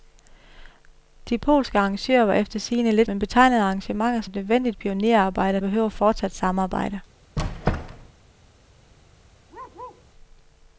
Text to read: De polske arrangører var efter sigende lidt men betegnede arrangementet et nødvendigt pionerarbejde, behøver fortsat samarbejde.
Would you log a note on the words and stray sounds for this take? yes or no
yes